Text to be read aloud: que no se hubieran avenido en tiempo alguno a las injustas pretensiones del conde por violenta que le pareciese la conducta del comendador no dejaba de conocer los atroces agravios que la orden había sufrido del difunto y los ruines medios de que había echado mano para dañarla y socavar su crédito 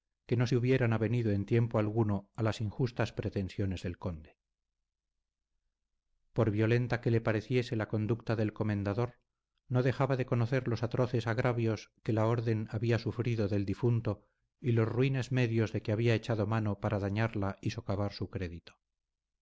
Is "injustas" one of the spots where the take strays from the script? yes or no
no